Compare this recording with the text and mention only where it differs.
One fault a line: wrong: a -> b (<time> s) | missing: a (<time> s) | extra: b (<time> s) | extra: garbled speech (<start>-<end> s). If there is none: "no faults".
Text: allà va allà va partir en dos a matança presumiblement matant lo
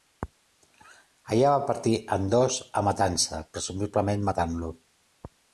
missing: allà va (1.7 s)